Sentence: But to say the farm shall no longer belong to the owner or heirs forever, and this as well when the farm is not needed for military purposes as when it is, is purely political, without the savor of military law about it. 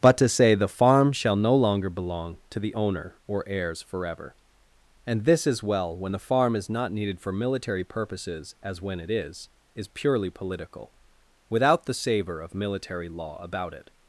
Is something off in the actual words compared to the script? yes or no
no